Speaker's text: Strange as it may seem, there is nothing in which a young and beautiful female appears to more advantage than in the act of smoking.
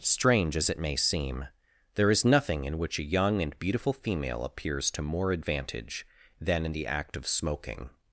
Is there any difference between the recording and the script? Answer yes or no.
no